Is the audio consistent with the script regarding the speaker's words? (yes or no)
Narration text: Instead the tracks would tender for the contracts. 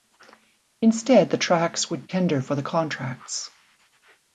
yes